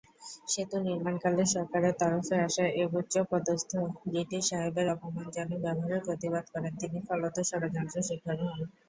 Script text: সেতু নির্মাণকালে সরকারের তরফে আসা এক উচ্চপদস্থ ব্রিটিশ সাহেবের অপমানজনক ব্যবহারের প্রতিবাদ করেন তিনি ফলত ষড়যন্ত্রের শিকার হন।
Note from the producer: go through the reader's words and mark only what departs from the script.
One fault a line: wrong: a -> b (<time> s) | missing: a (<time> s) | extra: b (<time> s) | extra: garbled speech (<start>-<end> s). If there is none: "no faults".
no faults